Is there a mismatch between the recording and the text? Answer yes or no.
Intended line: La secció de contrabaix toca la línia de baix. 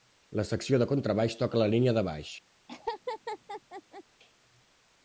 no